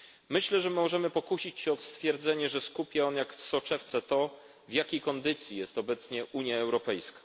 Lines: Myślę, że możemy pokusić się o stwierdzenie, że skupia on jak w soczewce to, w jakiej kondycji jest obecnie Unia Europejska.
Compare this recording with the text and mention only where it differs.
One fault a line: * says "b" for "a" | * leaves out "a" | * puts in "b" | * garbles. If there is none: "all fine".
all fine